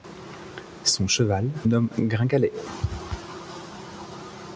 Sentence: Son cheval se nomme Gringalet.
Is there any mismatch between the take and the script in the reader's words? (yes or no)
yes